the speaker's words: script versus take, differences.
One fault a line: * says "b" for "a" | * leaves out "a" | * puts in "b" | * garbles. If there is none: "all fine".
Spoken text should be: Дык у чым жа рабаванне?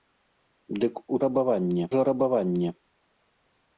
* says "рабаванне" for "чым"